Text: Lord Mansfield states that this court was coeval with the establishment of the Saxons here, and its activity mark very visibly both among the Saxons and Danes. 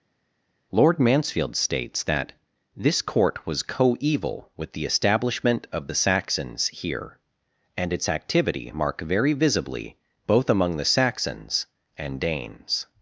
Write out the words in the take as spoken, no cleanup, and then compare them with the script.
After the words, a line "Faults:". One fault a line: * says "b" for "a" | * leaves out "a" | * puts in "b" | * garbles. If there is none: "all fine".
Lord Mansfield states that this court was coeval with the establishment of the Saxons here, and its activity mark very visibly both among the Saxons and Danes.
Faults:
all fine